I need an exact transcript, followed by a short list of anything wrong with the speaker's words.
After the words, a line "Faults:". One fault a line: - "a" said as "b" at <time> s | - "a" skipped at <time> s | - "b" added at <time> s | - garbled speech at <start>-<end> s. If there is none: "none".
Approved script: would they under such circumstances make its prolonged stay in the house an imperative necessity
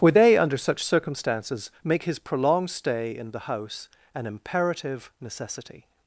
would they under such circumstances make his prolonged stay in the house an imperative necessity
Faults:
- "its" said as "his" at 2.0 s